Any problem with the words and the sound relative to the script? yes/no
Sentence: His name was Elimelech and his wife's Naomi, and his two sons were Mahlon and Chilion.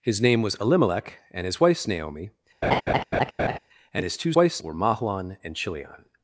yes